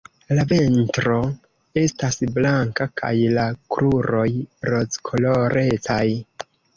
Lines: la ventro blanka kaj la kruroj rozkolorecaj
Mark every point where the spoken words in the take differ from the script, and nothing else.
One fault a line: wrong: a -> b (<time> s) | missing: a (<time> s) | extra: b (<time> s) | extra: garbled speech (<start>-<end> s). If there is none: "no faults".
extra: estas (1.8 s)